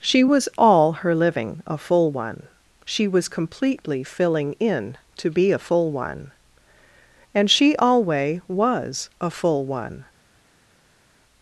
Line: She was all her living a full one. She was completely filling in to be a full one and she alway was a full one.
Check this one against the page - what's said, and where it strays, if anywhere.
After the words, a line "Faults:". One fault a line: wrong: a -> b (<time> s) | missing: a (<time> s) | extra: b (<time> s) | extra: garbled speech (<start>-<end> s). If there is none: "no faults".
She was all her living a full one. She was completely filling in to be a full one and she alway was a full one.
Faults:
no faults